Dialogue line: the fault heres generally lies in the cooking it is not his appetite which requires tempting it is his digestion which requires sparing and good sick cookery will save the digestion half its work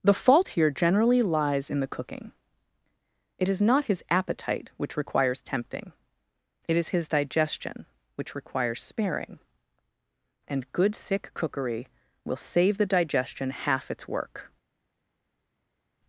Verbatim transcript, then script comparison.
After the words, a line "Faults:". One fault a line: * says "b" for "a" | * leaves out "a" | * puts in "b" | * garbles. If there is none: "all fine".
the fault here generally lies in the cooking it is not his appetite which requires tempting it is his digestion which requires sparing and good sick cookery will save the digestion half its work
Faults:
* says "here" for "heres"